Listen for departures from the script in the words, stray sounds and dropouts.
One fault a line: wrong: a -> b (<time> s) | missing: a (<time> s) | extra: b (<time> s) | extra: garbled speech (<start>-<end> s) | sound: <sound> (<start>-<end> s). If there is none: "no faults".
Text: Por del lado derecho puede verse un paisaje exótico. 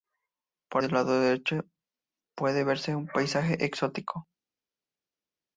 no faults